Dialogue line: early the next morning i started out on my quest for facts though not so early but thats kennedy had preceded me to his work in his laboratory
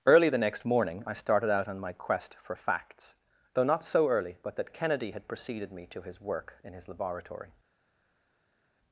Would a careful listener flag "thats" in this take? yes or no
yes